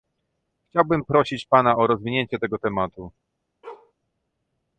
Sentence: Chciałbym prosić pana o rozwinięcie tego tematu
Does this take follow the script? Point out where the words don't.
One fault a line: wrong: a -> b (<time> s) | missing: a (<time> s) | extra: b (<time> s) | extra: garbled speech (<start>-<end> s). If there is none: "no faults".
no faults